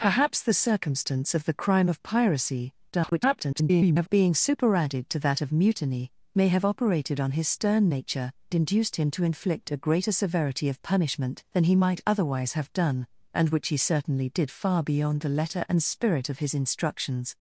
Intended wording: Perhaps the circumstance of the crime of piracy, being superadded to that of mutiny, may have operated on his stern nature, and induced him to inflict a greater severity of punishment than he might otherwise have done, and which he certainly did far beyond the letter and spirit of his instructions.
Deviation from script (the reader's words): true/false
true